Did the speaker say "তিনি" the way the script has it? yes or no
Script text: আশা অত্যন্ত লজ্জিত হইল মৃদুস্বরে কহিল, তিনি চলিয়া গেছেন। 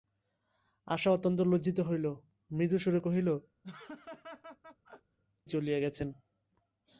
no